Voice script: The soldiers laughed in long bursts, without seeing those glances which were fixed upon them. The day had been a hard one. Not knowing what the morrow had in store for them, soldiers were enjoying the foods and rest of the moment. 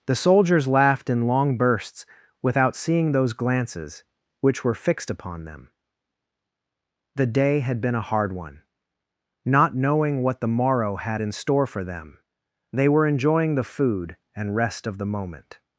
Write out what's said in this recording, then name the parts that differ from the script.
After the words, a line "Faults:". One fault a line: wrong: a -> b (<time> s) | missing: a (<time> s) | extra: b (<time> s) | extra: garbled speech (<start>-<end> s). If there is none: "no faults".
The soldiers laughed in long bursts, without seeing those glances which were fixed upon them. The day had been a hard one. Not knowing what the morrow had in store for them, they were enjoying the food and rest of the moment.
Faults:
wrong: soldiers -> they (12.7 s)
wrong: foods -> food (13.6 s)